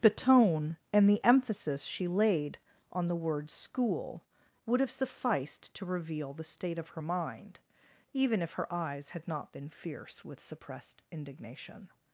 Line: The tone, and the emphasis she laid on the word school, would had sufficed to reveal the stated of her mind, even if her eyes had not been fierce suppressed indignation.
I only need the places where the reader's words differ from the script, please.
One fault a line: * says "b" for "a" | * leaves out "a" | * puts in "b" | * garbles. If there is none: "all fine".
* says "have" for "had"
* says "state" for "stated"
* puts in "with"